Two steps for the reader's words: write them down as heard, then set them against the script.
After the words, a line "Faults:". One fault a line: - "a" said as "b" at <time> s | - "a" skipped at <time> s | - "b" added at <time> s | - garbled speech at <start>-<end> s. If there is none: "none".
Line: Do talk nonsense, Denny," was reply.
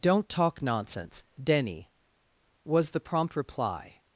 Don't talk nonsense, Denny," was the prompt reply.
Faults:
- "Do" said as "Don't" at 0.0 s
- "the prompt" added at 2.9 s